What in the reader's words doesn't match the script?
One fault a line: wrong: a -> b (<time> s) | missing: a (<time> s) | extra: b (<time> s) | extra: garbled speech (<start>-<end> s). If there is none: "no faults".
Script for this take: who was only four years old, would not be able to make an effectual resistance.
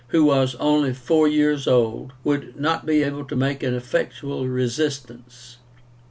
no faults